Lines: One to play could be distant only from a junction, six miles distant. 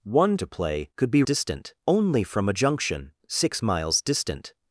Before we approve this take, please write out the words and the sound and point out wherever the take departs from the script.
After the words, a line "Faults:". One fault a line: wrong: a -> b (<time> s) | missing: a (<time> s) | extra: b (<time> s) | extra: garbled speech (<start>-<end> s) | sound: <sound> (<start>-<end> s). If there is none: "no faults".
One to play could be distant only from a junction, six miles distant.
Faults:
no faults